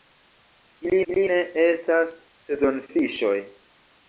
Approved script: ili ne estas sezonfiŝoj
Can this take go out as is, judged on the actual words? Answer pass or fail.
fail